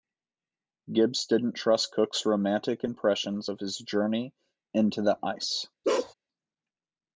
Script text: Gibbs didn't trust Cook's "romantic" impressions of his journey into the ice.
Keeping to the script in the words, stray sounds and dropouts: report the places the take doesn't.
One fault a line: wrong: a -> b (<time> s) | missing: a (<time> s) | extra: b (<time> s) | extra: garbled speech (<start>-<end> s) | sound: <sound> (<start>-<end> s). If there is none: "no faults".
sound: bark (5.8-6.1 s)